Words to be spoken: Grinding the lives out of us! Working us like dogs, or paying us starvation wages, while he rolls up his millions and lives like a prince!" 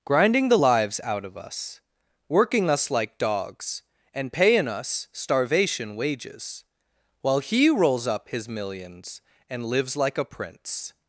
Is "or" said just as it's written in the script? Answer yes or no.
no